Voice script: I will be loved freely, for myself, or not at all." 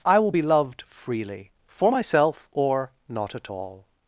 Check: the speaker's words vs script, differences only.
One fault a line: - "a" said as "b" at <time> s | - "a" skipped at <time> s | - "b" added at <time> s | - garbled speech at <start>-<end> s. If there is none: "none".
none